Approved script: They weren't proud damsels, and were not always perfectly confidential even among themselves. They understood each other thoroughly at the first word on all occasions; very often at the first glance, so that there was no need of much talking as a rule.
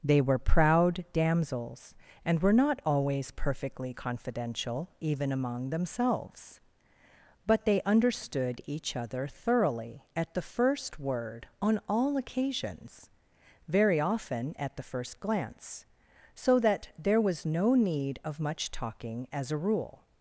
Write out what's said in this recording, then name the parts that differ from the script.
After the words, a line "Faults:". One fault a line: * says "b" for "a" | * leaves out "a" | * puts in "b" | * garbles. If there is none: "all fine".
They were proud damsels, and were not always perfectly confidential even among themselves. But they understood each other thoroughly at the first word on all occasions; very often at the first glance, so that there was no need of much talking as a rule.
Faults:
* says "were" for "weren't"
* puts in "But"